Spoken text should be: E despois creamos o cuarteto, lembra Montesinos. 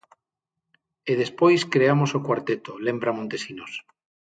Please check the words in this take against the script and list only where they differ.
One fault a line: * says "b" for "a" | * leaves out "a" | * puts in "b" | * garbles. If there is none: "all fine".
all fine